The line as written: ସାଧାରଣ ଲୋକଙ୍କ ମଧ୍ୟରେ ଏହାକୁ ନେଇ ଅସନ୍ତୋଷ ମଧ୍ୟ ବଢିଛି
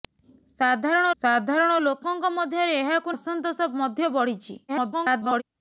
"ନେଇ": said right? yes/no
no